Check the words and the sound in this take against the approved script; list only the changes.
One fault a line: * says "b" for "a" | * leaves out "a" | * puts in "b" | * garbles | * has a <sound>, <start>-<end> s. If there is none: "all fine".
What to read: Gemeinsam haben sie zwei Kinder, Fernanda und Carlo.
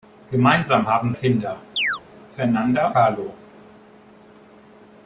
* leaves out "sie zwei"
* has a chirp, 1.8-2.0 s
* leaves out "und"